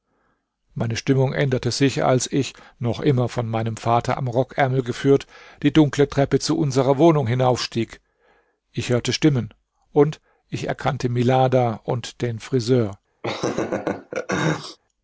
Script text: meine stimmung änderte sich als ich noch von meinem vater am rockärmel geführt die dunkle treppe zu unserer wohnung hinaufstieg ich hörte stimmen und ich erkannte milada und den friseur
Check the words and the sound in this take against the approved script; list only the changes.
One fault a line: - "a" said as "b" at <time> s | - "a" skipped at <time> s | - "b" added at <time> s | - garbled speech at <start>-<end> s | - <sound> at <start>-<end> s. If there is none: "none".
- "immer" added at 3.0 s
- laugh at 13.2-14.8 s